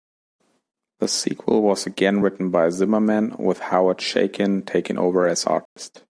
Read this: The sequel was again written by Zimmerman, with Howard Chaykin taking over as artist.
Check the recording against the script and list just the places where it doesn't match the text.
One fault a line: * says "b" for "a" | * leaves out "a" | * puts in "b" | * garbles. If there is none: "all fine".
all fine